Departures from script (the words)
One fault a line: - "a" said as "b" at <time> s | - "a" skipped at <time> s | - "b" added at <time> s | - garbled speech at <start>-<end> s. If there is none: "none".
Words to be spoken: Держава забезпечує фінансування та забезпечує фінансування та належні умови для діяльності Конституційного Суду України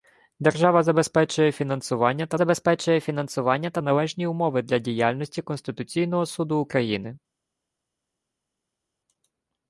none